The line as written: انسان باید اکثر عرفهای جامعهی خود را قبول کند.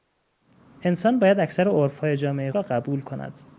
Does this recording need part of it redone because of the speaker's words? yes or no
yes